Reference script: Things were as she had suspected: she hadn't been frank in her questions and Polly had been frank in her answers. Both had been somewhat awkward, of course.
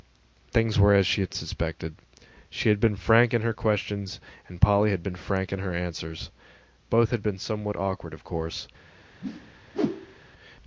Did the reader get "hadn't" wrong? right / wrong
wrong